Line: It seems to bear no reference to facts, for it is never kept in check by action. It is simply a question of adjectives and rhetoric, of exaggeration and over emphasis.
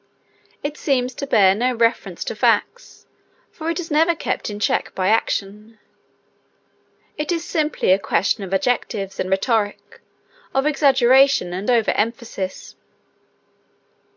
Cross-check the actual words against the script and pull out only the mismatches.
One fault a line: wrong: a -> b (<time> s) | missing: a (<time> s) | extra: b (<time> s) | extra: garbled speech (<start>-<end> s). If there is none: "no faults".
no faults